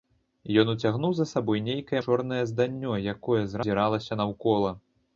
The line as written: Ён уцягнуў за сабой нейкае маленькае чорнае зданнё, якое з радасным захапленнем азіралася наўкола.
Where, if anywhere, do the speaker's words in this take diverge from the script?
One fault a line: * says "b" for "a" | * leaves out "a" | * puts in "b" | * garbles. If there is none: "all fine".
* leaves out "маленькае"
* leaves out "радасным захапленнем"